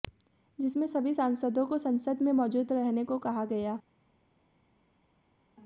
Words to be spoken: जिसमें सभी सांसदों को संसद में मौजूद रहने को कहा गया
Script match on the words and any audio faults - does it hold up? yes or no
yes